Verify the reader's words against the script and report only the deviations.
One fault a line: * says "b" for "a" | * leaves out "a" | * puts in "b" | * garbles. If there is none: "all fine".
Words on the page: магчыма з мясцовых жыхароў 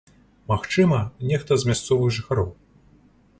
* puts in "нехта"